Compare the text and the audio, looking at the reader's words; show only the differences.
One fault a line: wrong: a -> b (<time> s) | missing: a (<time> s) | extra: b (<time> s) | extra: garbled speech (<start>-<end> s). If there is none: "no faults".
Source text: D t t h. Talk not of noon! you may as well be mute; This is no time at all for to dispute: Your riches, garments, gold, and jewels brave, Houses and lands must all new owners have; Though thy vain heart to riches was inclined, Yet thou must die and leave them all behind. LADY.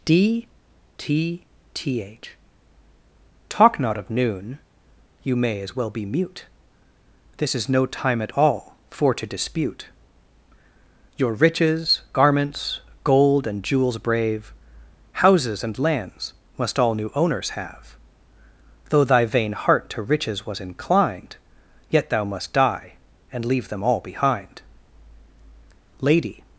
no faults